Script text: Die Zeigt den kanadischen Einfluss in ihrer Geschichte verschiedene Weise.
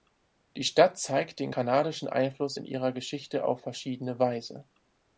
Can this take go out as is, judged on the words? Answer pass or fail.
fail